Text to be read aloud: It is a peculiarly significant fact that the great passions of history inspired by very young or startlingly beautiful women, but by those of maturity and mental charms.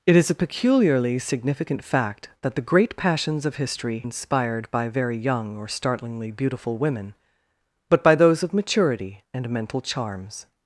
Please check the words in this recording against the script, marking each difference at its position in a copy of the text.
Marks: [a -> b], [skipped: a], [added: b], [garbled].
It is a peculiarly significant fact that the great passions of history inspired by very young or startlingly beautiful women, but by those of maturity and mental charms.